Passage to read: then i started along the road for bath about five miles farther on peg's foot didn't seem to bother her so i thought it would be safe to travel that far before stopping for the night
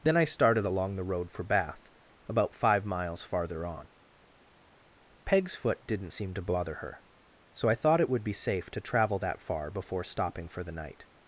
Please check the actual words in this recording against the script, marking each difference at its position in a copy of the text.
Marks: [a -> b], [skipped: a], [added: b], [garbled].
then i started along the road for bath about five miles farther on peg's foot didn't seem to bother her so i thought it would be safe to travel that far before stopping for the night